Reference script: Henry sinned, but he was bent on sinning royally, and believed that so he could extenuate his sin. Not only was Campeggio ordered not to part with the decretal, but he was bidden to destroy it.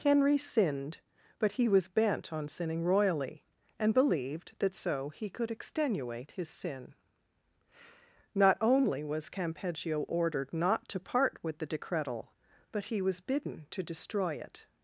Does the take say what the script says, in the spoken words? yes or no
yes